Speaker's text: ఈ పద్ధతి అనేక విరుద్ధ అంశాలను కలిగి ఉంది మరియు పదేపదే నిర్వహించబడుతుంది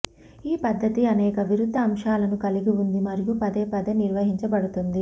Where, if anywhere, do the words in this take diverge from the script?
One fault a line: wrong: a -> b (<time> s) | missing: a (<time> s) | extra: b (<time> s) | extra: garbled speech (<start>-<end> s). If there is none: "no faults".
no faults